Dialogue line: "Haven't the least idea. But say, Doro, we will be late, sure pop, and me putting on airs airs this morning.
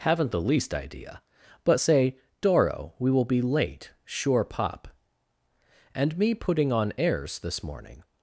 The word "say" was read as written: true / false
true